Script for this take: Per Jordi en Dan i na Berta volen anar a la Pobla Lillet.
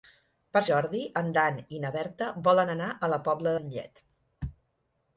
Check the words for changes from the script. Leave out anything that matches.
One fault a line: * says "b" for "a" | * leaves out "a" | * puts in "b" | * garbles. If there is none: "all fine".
all fine